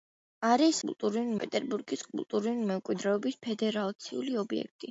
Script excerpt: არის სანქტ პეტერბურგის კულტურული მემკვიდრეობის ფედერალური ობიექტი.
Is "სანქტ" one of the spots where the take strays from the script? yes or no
yes